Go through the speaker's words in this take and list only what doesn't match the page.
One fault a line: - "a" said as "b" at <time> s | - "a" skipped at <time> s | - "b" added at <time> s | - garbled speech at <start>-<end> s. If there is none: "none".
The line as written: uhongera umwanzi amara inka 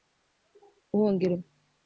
- "umwanzi amara" skipped at 1.3 s